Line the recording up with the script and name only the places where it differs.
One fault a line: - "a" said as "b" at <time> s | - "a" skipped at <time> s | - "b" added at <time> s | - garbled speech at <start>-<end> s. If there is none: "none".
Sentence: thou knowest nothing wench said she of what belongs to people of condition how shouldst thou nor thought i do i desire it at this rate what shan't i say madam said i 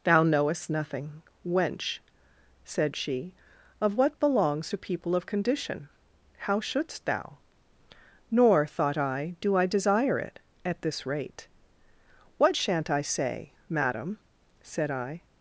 none